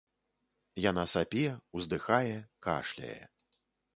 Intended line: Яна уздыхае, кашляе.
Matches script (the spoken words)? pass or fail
fail